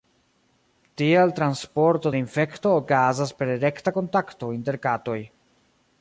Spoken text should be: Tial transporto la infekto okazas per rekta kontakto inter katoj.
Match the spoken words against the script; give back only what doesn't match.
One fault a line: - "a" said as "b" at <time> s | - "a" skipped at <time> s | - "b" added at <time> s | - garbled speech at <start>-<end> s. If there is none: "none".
none